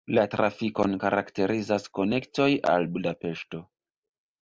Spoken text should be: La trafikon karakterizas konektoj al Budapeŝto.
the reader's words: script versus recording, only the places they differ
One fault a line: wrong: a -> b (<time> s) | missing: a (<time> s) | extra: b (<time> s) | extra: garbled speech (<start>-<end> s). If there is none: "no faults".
no faults